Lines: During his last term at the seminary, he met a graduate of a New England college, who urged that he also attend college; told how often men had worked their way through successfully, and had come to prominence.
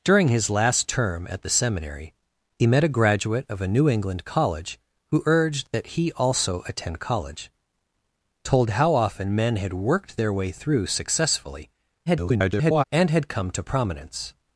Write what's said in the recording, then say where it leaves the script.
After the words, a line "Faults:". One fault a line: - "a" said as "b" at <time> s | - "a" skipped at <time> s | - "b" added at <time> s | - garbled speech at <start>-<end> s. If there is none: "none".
During his last term at the seminary, he met a graduate of a New England college, who urged that he also attend college; told how often men had worked their way through successfully, [garbled] and had come to prominence.
Faults:
- garbled speech at 12.1-12.8 s